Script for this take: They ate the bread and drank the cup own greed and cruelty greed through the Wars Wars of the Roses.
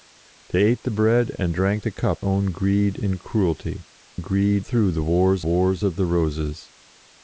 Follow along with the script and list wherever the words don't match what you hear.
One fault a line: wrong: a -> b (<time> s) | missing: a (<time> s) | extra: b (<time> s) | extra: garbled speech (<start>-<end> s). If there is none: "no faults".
no faults